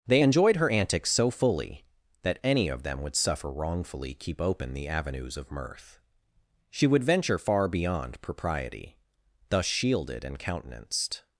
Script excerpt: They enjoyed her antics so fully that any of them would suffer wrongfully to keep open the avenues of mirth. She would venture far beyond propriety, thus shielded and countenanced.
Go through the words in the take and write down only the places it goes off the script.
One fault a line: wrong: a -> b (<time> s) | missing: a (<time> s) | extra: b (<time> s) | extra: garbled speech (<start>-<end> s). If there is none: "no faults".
missing: to (4.1 s)